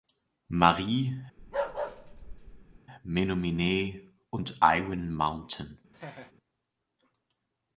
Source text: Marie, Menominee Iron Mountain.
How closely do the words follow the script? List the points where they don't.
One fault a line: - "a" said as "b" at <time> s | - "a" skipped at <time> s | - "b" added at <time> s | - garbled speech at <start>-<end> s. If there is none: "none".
- "und" added at 4.3 s